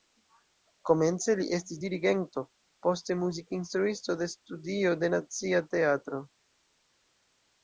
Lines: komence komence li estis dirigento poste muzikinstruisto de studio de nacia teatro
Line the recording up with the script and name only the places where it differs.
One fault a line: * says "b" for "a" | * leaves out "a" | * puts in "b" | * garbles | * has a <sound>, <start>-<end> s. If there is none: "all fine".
* leaves out "komence"